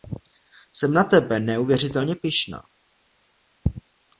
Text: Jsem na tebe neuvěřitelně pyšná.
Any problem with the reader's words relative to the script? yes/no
no